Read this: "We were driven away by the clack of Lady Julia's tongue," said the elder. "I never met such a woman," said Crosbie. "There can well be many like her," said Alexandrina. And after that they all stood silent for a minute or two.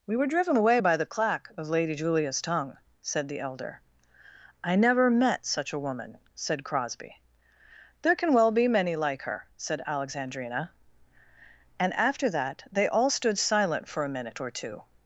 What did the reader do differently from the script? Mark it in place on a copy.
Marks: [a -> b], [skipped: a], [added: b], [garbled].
"We were driven away by the clack of Lady Julia's tongue," said the elder. "I never met such a woman," said Crosbie. "There can well be many like her," said Alexandrina. And after that they all stood silent for a minute or two.